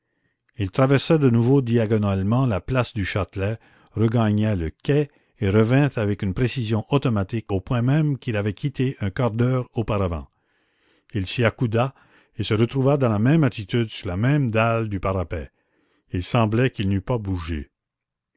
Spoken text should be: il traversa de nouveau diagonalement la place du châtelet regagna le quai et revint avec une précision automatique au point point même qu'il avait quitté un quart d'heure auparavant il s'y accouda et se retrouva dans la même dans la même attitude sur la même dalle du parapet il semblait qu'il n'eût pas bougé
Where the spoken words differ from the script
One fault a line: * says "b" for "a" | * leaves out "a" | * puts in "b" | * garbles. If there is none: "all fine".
* leaves out "point"
* leaves out "dans la même"